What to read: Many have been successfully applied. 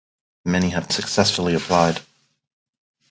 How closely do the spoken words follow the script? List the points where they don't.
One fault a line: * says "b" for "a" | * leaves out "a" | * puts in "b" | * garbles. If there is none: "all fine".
* leaves out "been"